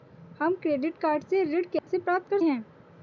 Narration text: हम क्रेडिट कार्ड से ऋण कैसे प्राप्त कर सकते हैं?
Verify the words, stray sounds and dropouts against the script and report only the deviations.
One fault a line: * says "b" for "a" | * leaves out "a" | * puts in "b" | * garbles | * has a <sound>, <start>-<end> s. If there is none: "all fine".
* has a dropout, 1.8-1.9 s
* leaves out "सकते"